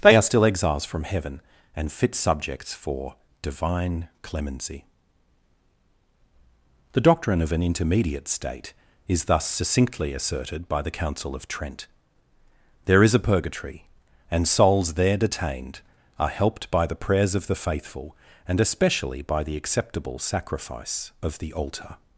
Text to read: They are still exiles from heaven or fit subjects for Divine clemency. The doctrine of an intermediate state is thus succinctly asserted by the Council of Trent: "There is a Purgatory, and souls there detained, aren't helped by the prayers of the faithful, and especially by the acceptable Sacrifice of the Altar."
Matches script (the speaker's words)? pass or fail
fail